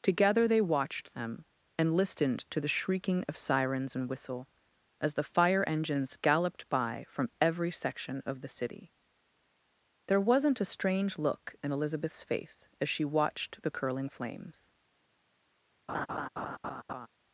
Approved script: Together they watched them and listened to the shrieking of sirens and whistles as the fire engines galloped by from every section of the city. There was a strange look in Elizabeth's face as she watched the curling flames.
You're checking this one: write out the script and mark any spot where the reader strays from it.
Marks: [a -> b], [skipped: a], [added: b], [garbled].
Together they watched them and listened to the shrieking of sirens and [whistles -> whistle] as the fire engines galloped by from every section of the city. There [was -> wasn't] a strange look in Elizabeth's face as she watched the curling flames.